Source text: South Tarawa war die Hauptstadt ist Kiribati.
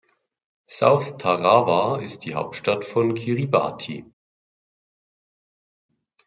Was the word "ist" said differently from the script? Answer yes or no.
yes